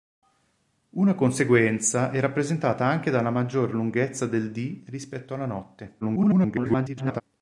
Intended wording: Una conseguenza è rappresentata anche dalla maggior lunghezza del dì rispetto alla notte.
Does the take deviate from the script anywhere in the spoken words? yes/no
yes